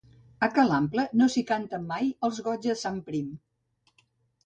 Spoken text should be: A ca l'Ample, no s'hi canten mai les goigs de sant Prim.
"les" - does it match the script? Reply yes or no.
no